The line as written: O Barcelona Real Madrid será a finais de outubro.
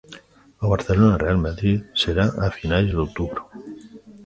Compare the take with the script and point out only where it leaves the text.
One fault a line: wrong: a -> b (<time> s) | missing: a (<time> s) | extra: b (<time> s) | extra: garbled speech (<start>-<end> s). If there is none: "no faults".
no faults